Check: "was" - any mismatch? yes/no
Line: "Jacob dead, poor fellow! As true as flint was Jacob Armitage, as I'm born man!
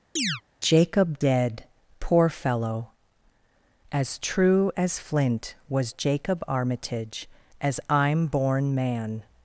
no